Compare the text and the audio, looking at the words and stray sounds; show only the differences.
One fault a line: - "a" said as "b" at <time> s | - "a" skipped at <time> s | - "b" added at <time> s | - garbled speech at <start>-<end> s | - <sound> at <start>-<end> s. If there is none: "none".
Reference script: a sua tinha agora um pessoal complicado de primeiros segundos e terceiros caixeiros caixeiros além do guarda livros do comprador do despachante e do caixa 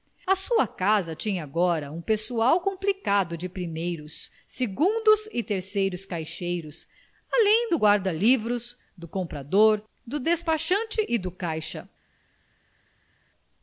- "casa" added at 0.7 s
- "caixeiros" skipped at 6.9 s